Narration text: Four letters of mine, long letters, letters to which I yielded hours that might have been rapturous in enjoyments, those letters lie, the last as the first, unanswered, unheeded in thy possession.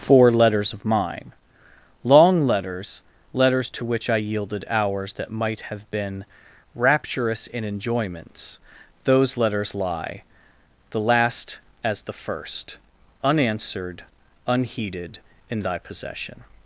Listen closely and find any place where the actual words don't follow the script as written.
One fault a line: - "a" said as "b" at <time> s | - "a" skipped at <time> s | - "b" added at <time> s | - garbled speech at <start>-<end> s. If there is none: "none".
none